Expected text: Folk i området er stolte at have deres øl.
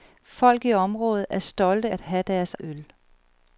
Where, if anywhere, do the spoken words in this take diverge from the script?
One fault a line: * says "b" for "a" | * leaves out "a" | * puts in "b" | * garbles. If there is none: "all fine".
all fine